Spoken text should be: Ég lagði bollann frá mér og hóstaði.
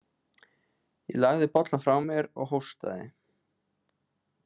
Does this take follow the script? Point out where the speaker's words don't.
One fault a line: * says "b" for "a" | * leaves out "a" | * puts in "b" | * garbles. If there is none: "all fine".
all fine